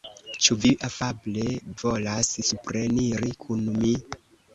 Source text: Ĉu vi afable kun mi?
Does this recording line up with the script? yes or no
no